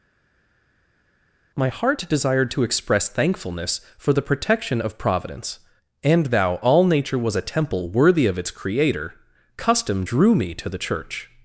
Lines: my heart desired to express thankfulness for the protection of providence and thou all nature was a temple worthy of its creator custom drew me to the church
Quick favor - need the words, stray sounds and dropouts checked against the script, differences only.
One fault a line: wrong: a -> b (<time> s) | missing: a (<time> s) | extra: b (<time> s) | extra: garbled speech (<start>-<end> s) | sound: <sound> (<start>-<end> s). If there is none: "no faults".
no faults